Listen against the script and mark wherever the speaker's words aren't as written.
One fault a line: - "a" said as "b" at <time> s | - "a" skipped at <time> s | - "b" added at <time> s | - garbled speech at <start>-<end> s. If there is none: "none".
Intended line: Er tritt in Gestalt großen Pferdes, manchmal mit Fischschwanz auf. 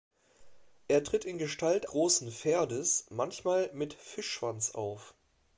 none